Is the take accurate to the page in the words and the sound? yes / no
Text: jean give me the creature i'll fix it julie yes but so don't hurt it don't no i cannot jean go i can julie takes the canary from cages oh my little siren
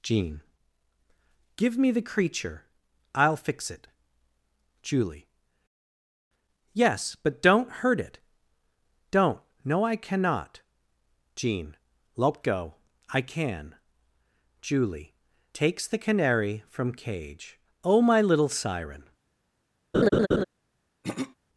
no